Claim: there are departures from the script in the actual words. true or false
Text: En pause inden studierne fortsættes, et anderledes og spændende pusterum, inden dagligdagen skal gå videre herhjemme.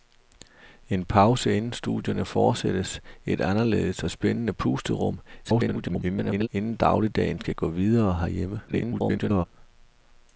true